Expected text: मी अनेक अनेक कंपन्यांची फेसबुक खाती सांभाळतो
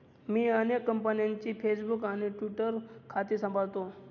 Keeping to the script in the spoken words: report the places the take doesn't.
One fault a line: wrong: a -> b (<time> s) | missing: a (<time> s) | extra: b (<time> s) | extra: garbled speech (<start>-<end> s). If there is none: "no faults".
missing: अनेक (0.8 s)
extra: आणि ट्विटर (2.0 s)